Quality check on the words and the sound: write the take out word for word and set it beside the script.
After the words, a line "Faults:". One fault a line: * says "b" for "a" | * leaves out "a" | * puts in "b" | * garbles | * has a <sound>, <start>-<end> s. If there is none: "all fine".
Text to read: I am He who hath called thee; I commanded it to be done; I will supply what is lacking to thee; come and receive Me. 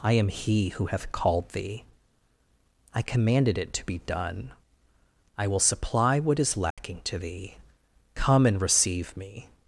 I am He who hath called thee; I commanded it to be done; I will supply what is lacking to thee; come and receive Me.
Faults:
* has a dropout, 6.7-6.8 s